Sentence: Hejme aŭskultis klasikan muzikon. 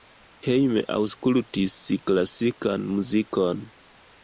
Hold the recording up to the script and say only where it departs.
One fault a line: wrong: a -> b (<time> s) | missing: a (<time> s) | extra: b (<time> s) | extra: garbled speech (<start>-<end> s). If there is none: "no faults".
no faults